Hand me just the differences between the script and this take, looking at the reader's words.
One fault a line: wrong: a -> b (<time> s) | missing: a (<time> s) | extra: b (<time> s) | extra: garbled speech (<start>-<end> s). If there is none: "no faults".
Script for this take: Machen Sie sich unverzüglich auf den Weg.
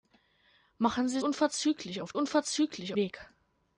missing: sich (1.2 s)
wrong: den -> unverzüglich (2.1 s)